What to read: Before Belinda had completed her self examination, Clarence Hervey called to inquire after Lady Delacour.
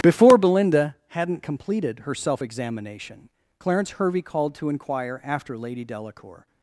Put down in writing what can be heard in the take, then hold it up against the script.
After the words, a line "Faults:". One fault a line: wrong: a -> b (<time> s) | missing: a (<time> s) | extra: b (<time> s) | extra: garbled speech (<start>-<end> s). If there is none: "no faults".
Before Belinda hadn't completed her self examination, Clarence Hervey called to inquire after Lady Delacour.
Faults:
wrong: had -> hadn't (1.1 s)